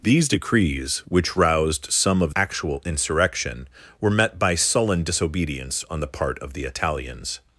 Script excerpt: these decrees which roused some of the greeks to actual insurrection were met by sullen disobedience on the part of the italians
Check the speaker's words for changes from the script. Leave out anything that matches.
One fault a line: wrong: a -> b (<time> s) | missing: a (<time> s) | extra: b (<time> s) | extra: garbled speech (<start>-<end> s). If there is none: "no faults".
missing: the greeks to (2.4 s)